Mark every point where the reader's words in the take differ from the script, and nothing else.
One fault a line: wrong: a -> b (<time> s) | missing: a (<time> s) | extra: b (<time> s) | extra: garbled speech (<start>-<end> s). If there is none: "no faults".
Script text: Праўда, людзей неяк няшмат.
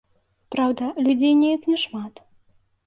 no faults